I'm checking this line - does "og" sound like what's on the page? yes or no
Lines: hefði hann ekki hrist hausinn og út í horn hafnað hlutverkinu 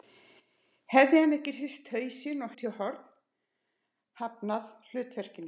yes